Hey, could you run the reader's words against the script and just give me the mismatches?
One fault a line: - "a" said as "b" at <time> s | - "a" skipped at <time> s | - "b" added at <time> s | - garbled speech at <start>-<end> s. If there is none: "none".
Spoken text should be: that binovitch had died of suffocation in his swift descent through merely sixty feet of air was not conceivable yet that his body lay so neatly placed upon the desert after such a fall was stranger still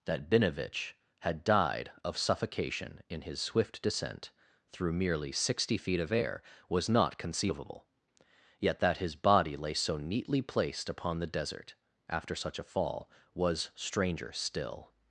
none